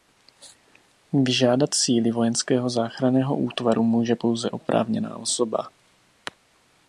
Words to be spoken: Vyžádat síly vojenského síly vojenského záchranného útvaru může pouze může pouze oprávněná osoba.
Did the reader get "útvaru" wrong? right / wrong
right